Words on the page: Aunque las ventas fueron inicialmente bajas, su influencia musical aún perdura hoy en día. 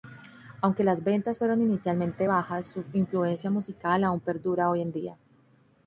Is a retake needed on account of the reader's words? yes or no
no